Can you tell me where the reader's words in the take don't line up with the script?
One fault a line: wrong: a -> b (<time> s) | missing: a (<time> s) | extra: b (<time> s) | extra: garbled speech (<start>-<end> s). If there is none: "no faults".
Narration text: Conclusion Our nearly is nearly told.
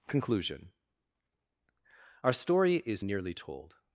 wrong: nearly -> story (2.3 s)